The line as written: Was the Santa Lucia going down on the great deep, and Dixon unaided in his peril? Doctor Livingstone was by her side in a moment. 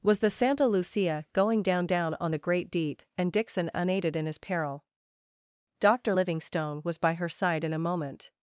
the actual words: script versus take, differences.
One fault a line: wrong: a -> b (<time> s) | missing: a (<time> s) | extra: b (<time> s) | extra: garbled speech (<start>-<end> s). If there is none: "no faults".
extra: down (1.9 s)